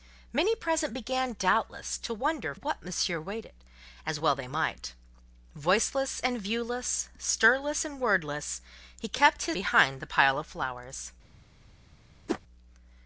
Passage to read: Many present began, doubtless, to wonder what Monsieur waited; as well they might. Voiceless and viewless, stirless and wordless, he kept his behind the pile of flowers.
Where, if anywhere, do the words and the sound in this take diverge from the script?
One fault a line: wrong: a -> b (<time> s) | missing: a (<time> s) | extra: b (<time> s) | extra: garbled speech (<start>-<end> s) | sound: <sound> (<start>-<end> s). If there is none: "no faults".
sound: whoosh (12.3-12.4 s)